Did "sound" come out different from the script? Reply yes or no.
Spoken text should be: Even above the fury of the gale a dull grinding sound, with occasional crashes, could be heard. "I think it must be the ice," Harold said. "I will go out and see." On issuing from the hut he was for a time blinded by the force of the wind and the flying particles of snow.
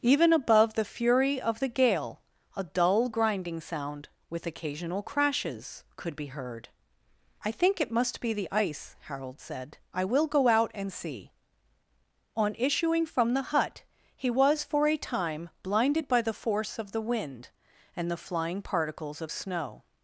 no